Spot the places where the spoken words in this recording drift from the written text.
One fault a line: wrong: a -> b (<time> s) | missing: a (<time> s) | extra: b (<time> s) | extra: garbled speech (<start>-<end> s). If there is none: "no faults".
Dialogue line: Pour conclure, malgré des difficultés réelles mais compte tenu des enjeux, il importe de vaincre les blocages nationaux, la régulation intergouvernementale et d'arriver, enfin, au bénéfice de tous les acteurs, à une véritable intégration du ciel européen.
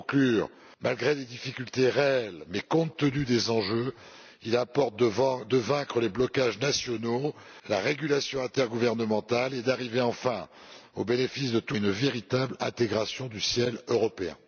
missing: les acteurs à (11.8 s)